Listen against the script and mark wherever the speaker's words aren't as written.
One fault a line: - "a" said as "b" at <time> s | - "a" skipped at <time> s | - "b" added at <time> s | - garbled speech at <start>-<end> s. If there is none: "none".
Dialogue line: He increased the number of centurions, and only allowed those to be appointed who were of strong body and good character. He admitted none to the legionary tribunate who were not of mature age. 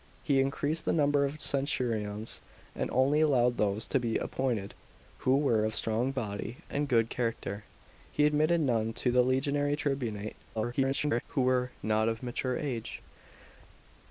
- garbled speech at 10.6-11.2 s